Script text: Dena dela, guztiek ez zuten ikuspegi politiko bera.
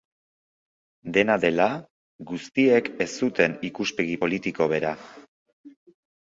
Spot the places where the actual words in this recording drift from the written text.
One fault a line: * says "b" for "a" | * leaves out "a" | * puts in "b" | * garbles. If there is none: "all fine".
all fine